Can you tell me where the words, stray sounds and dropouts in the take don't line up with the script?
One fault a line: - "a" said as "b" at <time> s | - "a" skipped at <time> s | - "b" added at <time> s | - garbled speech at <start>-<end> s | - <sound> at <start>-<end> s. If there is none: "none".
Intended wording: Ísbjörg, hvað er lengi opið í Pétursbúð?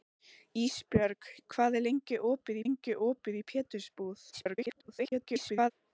- "lengi opið" added at 2.6 s
- garbled speech at 4.3-5.7 s